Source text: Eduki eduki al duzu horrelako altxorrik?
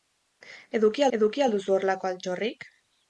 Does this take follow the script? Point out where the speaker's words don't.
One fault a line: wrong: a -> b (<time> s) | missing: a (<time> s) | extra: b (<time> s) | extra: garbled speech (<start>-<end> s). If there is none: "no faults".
no faults